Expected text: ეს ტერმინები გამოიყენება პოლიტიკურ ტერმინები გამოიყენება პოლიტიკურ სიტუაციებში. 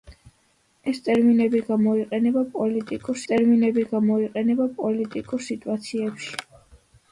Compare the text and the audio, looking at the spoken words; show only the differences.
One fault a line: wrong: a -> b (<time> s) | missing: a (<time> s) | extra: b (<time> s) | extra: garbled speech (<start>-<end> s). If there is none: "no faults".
no faults